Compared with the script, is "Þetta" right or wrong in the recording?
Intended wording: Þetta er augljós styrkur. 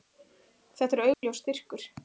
right